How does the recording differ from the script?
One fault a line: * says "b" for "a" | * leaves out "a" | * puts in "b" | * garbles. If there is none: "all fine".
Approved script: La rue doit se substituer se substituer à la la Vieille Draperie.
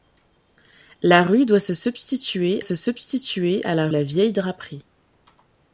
all fine